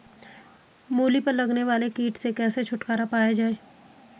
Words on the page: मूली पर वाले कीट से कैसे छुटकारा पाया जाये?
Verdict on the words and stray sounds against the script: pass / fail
fail